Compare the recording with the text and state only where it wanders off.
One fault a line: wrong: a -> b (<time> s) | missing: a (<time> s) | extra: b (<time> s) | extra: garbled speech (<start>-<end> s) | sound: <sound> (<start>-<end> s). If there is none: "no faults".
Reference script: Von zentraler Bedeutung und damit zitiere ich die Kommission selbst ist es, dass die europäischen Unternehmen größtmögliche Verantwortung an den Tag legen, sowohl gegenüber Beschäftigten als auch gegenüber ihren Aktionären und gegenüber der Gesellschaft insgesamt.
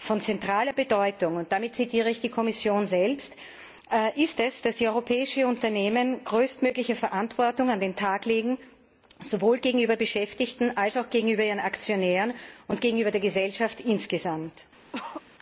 sound: cough (14.9-15.2 s)